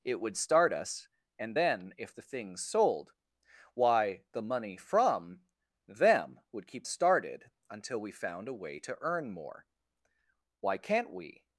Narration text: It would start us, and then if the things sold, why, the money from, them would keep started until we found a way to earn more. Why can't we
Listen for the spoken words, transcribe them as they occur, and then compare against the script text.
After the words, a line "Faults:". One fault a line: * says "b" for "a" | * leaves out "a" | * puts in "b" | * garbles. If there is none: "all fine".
It would start us, and then if the things sold, why, the money from, them would keep started until we found a way to earn more. Why can't we
Faults:
all fine